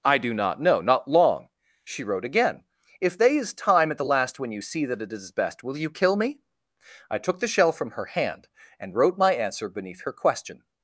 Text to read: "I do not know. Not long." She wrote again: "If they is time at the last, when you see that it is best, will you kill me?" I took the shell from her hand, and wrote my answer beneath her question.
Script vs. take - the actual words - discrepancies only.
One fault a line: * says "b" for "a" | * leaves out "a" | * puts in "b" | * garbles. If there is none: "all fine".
all fine